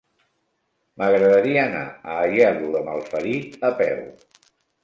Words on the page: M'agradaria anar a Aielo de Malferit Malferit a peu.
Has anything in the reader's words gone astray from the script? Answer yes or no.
yes